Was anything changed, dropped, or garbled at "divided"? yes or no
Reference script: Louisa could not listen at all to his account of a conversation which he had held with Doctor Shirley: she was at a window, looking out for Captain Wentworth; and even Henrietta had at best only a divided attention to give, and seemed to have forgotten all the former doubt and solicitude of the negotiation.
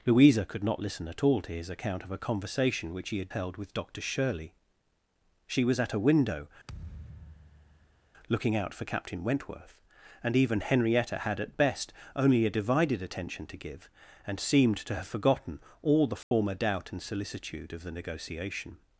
no